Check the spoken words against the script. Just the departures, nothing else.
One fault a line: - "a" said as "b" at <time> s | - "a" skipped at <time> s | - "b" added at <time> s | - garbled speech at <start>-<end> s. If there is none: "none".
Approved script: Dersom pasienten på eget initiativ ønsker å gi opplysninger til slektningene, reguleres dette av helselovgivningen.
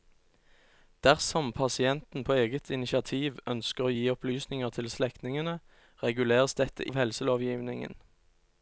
none